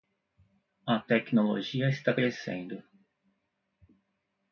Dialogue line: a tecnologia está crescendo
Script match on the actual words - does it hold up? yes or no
yes